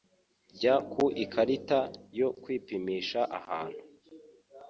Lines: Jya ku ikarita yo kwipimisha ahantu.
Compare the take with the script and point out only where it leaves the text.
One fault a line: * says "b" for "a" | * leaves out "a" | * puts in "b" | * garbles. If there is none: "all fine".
all fine